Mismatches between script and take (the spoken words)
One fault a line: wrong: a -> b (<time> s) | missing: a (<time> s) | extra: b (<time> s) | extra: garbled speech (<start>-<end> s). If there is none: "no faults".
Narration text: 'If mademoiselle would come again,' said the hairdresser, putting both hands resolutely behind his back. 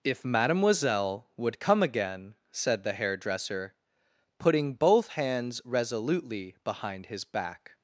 no faults